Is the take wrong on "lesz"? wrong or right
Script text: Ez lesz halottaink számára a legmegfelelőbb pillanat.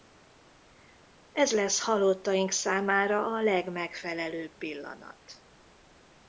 right